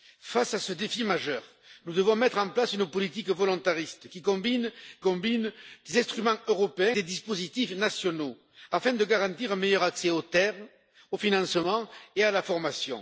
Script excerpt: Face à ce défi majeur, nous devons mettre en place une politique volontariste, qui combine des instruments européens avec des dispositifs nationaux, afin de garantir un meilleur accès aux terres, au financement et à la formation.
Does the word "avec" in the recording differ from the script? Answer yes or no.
yes